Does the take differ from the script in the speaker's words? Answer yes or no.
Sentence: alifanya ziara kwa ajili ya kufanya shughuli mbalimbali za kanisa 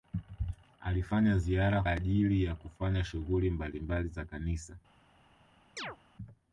yes